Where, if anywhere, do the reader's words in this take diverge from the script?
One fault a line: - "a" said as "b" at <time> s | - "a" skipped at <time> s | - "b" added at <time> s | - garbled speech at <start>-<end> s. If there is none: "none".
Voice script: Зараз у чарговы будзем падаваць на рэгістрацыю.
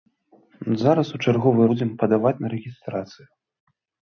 none